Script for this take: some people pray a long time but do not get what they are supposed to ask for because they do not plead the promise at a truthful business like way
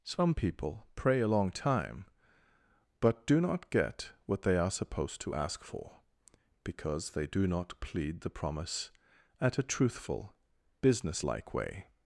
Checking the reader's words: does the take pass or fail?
pass